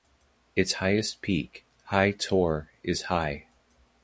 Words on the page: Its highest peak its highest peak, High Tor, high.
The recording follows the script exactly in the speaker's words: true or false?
false